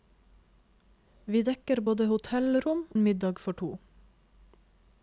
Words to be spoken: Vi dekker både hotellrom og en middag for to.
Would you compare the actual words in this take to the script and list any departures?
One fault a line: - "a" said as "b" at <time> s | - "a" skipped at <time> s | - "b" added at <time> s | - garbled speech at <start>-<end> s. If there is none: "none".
- "og" skipped at 2.9 s